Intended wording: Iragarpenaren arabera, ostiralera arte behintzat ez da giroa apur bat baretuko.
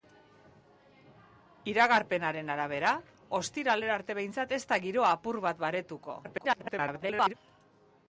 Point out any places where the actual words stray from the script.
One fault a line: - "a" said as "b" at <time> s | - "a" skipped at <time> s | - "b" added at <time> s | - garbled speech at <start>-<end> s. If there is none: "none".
- garbled speech at 6.2-7.3 s